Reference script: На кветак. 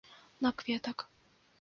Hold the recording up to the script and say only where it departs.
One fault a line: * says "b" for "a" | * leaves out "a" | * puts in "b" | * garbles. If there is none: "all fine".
all fine